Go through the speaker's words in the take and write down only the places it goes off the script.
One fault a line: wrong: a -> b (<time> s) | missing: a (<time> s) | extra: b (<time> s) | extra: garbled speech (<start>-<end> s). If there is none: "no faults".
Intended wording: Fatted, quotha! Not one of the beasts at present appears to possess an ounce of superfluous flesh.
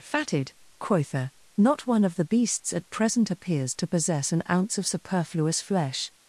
no faults